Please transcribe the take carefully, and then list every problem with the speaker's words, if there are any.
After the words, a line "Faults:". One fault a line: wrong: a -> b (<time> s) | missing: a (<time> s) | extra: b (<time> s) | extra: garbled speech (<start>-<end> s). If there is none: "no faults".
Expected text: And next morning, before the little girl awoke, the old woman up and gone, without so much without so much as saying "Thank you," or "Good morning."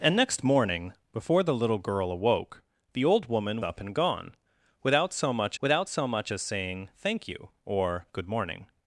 And next morning, before the little girl awoke, the old woman up and gone, without so much without so much as saying "Thank you," or "Good morning."
Faults:
no faults